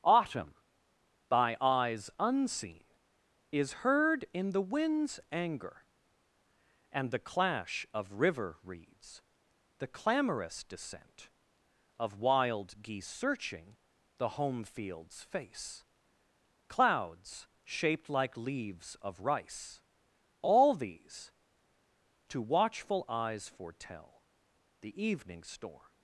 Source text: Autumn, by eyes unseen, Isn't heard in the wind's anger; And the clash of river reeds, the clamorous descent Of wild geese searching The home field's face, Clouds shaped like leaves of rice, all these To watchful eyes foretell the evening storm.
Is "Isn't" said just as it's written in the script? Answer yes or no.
no